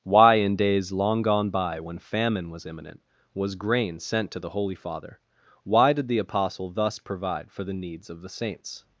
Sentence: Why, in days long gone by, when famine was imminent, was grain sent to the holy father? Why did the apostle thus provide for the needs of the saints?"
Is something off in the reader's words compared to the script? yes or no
no